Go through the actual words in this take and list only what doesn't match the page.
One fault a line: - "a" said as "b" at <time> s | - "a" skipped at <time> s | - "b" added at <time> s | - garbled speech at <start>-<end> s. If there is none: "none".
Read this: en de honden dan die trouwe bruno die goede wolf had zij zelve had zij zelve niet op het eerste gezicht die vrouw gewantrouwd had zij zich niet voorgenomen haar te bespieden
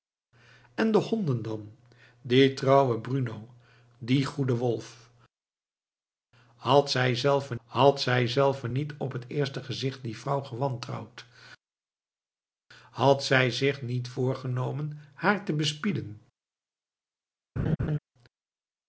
none